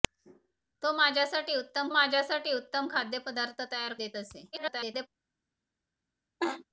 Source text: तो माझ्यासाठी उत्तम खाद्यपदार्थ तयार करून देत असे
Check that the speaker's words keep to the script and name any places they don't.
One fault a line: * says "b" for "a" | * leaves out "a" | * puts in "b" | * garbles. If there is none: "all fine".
* puts in "माझ्यासाठी उत्तम"
* leaves out "करून"
* garbles